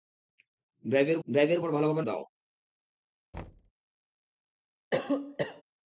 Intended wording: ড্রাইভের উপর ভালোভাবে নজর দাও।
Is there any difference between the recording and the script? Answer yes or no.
yes